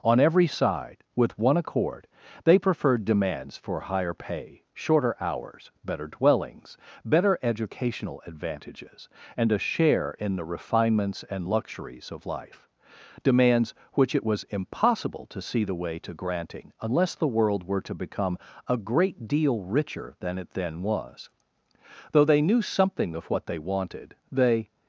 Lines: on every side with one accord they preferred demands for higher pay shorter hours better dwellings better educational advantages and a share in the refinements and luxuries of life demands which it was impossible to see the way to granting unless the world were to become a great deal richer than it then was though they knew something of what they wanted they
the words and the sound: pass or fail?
pass